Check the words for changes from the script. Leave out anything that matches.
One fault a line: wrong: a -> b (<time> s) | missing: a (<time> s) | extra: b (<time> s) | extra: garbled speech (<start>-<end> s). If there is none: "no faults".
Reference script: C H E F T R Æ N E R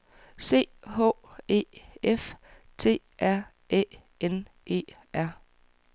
no faults